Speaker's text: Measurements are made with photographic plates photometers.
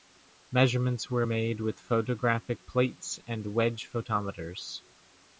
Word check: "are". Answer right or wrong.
wrong